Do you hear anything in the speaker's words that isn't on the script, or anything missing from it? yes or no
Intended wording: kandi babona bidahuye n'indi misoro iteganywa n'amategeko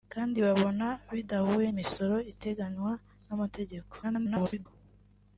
yes